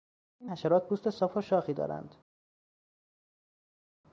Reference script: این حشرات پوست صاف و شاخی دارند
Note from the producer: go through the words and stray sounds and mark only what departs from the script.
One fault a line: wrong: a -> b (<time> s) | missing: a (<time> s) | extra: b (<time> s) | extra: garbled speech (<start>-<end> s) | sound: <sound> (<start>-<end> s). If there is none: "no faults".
no faults